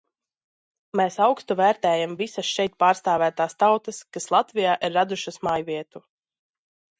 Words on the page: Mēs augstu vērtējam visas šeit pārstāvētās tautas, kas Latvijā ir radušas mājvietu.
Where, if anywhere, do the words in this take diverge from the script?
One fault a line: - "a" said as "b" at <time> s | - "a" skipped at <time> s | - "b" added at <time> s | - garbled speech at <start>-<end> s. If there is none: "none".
none